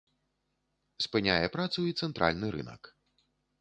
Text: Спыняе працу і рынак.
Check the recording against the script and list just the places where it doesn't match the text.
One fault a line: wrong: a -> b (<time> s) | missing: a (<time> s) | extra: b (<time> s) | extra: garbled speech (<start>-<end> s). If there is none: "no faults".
extra: цэнтральны (2.0 s)